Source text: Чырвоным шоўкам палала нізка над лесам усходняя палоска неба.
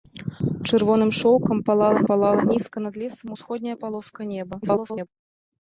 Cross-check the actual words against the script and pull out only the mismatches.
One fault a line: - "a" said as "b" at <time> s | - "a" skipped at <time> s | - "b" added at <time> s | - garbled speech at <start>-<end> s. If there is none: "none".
- "палала" added at 2.1 s
- garbled speech at 4.6-5.1 s